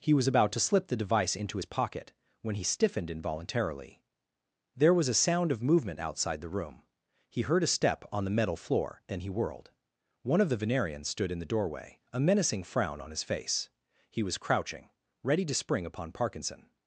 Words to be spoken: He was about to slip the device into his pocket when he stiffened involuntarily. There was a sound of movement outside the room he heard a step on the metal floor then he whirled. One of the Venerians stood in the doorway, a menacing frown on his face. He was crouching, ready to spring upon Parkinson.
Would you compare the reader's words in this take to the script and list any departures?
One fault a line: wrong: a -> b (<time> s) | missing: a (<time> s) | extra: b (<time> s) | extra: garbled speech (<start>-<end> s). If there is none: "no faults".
no faults